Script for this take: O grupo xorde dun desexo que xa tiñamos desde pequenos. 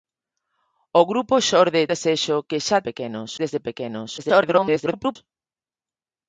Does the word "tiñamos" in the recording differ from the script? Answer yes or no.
yes